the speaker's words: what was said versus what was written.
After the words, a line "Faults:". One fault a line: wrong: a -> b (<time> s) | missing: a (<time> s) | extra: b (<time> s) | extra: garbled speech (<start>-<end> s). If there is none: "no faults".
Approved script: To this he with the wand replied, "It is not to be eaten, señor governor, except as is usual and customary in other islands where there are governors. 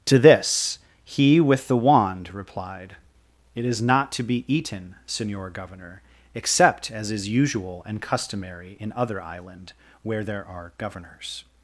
To this he with the wand replied, "It is not to be eaten, señor governor, except as is usual and customary in other island where there are governors.
Faults:
wrong: islands -> island (9.2 s)